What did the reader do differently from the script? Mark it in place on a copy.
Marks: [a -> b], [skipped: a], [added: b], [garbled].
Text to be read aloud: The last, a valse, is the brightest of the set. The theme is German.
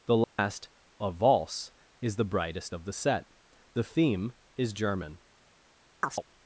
The last, a valse, is the brightest of the set. The theme is German.